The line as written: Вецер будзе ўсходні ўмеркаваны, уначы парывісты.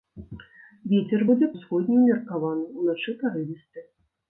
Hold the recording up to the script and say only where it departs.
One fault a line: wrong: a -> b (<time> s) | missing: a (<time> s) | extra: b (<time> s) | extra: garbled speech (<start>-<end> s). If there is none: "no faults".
no faults